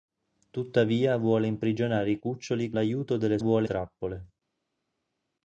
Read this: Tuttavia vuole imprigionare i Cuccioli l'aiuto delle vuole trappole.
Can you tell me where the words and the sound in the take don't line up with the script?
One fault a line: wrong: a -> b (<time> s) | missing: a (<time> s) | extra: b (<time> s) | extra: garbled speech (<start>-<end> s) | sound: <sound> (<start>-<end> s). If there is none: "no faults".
no faults